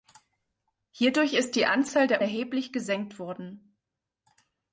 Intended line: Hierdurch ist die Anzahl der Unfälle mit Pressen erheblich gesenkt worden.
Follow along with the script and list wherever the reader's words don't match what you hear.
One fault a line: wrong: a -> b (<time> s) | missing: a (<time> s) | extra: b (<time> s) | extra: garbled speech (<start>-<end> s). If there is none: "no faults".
missing: Unfälle mit Pressen (2.2 s)